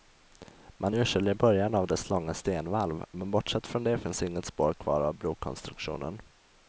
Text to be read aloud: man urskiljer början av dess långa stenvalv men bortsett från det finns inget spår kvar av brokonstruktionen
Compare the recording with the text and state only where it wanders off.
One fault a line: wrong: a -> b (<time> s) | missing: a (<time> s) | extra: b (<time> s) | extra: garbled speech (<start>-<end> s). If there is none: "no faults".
no faults